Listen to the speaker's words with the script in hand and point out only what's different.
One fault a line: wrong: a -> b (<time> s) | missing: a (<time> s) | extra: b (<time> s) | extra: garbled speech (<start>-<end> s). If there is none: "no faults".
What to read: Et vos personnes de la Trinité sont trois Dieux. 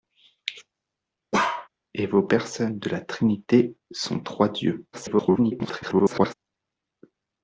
extra: garbled speech (4.9-6.3 s)